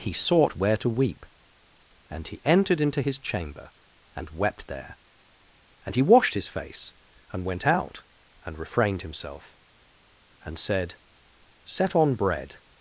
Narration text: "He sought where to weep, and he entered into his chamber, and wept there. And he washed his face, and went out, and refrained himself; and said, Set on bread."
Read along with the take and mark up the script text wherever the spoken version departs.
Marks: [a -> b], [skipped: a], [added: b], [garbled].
"He sought where to weep, and he entered into his chamber, and wept there. And he washed his face, and went out, and refrained himself; and said, Set on bread."